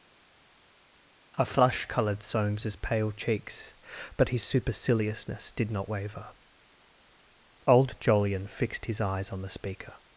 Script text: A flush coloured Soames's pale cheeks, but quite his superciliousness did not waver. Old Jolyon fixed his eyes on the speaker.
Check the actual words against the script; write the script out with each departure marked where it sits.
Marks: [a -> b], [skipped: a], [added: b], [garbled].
A flush coloured Soames's pale cheeks, but [skipped: quite] his superciliousness did not waver. Old Jolyon fixed his eyes on the speaker.